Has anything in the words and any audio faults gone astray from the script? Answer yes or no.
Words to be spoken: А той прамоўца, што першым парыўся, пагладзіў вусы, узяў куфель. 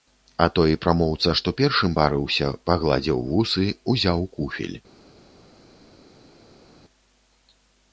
no